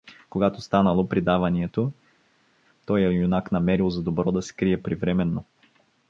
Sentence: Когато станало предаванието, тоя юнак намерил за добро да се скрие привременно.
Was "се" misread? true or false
true